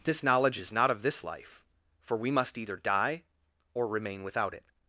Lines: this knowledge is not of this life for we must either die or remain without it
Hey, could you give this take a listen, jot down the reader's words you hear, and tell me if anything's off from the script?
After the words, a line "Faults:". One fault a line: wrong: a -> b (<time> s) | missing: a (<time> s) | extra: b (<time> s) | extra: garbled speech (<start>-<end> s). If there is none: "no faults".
this knowledge is not of this life for we must either die or remain without it
Faults:
no faults